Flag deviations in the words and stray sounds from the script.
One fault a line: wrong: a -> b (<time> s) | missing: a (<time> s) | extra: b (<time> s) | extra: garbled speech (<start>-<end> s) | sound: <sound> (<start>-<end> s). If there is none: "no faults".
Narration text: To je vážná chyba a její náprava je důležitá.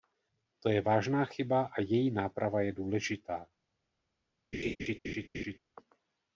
sound: laugh (4.5-5.6 s)